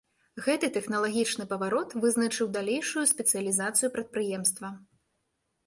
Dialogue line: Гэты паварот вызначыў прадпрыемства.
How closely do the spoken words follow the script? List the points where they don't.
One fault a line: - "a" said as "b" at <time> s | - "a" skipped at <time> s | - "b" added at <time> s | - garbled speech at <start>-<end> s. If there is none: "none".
- "тэхналагічны" added at 0.8 s
- "далейшую спецыялізацыю" added at 2.6 s